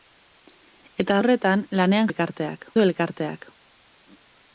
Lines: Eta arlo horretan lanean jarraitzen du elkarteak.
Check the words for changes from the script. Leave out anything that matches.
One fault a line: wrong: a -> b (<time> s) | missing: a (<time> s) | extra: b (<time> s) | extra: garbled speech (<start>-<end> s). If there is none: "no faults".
missing: arlo (1.2 s)
wrong: jarraitzen -> elkarteak (2.1 s)